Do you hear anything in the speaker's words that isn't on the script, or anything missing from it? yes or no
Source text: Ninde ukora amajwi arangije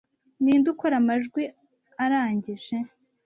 no